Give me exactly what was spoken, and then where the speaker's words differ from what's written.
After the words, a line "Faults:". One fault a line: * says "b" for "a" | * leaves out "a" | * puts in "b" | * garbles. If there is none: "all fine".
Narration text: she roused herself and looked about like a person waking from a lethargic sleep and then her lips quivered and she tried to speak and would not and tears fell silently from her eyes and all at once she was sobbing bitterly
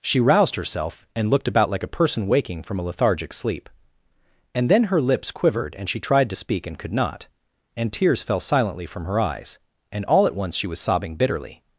she roused herself and looked about like a person waking from a lethargic sleep and then her lips quivered and she tried to speak and could not and tears fell silently from her eyes and all at once she was sobbing bitterly
Faults:
* says "could" for "would"